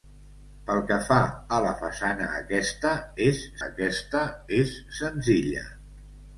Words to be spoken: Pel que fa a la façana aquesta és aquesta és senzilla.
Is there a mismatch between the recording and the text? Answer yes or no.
no